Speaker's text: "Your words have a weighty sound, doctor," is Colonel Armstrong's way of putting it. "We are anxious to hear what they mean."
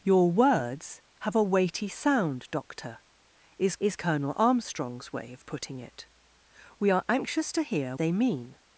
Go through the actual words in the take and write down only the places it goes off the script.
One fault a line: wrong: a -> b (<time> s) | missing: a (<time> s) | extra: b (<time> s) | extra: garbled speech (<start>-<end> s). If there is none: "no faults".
extra: is (3.8 s)
missing: what (7.9 s)